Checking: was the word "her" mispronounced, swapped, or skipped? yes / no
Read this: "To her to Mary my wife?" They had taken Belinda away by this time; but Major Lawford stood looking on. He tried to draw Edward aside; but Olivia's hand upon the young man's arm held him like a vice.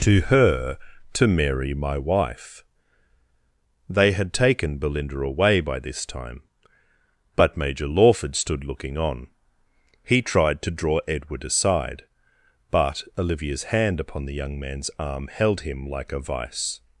no